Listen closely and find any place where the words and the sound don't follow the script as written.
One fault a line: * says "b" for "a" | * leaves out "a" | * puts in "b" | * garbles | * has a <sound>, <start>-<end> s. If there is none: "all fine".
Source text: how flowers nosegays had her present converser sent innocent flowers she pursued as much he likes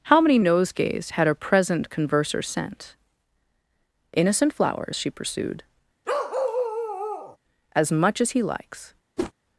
* says "many" for "flowers"
* has a bark, 6.0-7.4 s
* puts in "as"
* has a whoosh, 9.2-9.3 s